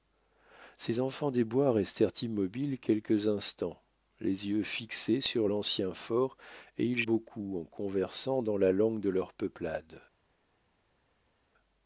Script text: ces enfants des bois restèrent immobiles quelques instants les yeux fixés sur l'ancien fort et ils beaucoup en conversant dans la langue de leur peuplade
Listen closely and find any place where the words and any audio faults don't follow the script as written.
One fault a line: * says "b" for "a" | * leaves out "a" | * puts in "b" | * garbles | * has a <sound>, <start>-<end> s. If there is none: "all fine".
all fine